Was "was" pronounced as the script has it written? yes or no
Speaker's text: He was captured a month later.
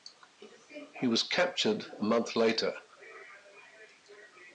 yes